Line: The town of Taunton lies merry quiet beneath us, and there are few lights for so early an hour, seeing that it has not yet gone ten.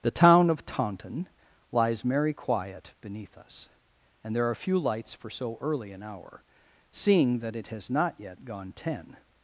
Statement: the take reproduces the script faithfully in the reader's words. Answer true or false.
true